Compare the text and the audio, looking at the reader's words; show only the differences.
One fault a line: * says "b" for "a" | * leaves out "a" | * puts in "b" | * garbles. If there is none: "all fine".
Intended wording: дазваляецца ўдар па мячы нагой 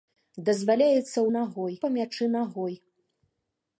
* says "нагой" for "ўдар"